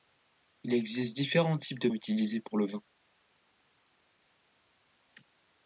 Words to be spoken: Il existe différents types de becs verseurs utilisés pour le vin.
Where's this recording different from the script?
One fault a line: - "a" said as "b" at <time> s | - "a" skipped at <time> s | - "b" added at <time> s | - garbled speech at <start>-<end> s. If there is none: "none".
- "becs verseurs" skipped at 1.9 s